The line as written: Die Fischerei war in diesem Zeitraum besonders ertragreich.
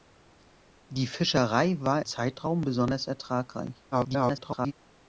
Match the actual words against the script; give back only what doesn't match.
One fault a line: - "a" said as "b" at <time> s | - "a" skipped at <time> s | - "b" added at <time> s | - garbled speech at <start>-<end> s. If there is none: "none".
- "in diesem" skipped at 2.0 s
- garbled speech at 3.9-4.7 s